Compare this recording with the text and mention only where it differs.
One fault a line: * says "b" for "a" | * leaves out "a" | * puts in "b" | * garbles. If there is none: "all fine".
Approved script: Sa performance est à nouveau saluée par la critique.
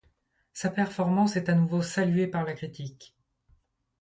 all fine